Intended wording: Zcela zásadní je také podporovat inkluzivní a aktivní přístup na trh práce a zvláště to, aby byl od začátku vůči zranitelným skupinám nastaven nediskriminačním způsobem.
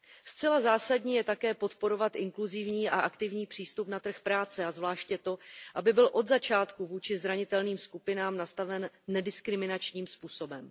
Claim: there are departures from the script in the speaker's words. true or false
false